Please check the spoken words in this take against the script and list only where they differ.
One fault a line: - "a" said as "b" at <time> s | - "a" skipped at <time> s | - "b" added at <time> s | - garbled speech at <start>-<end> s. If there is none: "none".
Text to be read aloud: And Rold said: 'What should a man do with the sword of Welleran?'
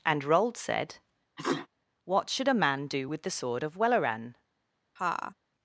none